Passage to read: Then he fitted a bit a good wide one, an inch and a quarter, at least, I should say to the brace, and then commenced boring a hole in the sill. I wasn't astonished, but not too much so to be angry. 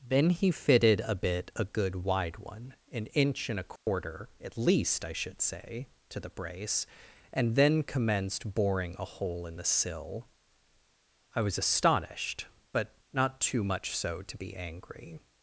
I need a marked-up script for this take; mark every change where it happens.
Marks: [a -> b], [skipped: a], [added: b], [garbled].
Then he fitted a bit a good wide one, an inch and a quarter, at least, I should say to the brace, and then commenced boring a hole in the sill. I [wasn't -> was] astonished, but not too much so to be angry.